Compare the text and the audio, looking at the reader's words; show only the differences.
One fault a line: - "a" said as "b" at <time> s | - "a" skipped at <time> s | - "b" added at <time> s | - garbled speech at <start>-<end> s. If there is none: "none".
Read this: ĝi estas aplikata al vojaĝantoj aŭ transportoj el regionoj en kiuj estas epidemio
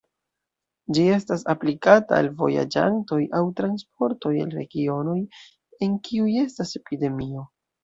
none